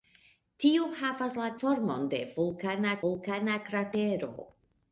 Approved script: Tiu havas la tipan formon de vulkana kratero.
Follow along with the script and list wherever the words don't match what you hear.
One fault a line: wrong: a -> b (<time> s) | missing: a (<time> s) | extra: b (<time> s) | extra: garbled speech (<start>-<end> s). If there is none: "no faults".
missing: tipan (1.5 s)
extra: vulkana (3.1 s)